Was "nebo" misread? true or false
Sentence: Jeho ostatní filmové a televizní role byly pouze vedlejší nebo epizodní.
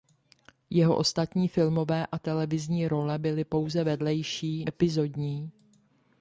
true